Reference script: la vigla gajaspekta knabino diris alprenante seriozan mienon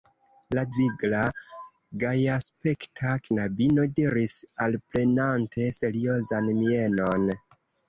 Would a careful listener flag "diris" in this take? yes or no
no